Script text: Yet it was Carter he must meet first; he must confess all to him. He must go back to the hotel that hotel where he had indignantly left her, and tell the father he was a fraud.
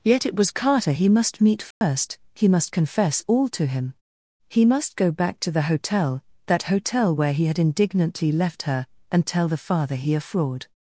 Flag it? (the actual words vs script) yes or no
yes